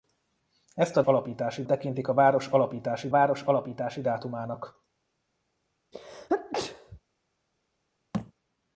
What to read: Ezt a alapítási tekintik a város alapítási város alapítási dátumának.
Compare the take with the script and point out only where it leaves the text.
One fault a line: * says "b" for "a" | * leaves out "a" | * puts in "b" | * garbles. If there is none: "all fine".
all fine